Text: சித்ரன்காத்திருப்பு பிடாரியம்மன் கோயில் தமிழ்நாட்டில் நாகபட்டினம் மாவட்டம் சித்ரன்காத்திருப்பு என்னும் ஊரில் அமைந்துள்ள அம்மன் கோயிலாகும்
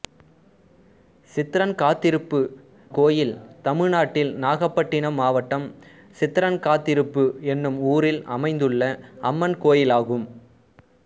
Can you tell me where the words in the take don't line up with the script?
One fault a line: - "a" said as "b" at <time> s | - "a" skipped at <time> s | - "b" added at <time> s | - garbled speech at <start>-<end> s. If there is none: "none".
- "பிடாரியம்மன்" skipped at 2.4 s